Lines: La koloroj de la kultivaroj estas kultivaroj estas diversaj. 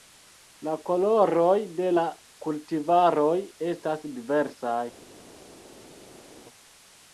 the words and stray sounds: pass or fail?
fail